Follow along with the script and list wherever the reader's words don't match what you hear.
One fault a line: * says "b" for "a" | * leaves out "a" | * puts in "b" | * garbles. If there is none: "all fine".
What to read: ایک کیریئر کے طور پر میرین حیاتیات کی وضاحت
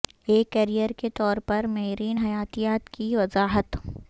all fine